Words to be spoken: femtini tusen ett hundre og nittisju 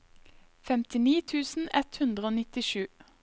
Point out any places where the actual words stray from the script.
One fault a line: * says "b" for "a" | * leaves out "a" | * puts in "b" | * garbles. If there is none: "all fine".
all fine